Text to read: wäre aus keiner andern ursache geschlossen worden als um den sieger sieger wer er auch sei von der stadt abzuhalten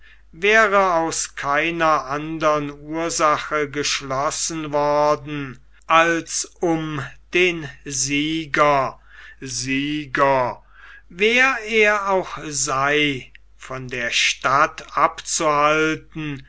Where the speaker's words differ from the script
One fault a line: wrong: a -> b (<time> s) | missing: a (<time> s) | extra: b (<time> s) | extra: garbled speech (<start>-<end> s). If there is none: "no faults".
no faults